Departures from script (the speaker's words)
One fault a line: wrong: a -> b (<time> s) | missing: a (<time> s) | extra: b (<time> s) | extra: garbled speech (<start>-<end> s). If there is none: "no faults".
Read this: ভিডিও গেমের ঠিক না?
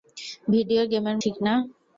no faults